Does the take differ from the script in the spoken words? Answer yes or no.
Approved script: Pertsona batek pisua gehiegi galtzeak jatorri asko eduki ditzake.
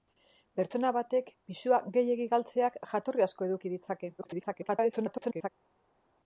yes